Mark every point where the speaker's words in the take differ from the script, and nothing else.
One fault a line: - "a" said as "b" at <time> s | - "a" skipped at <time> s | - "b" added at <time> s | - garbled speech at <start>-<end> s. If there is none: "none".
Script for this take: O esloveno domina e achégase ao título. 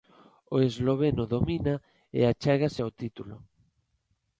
none